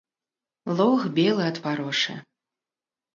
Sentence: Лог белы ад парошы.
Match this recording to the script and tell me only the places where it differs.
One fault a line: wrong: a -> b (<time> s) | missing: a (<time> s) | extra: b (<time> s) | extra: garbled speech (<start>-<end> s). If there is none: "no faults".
no faults